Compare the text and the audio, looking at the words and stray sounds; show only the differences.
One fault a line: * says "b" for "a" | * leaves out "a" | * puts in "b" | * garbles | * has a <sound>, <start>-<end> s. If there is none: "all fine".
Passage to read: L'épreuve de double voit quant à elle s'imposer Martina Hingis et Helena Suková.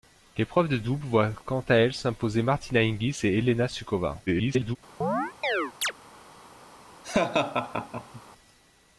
* garbles
* has a chirp, 5.0-5.9 s
* has a laugh, 7.0-8.2 s